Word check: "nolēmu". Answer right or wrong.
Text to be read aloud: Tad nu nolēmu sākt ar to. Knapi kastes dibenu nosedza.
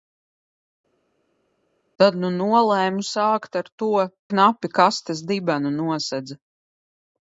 right